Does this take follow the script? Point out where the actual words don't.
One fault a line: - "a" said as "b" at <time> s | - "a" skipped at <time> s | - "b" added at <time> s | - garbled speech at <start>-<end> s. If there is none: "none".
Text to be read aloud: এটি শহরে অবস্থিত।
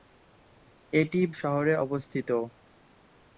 none